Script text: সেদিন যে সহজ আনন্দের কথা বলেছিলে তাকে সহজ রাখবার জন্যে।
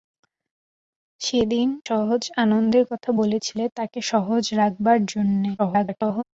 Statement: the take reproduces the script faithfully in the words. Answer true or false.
false